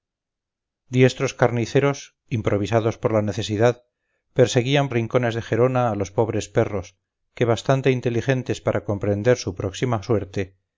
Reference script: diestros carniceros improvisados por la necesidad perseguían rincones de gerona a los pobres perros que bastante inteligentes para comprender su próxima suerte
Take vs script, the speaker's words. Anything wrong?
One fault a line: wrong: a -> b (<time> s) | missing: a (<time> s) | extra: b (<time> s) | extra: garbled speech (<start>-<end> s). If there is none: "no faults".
no faults